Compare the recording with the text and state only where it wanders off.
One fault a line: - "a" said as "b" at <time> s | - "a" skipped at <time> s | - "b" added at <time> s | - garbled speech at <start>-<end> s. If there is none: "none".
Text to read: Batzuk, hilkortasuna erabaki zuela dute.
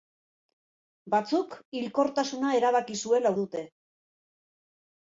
none